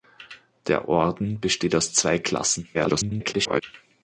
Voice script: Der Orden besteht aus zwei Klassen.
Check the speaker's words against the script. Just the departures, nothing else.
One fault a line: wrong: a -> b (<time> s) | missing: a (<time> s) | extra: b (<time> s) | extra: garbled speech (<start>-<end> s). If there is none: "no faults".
extra: garbled speech (2.7-3.6 s)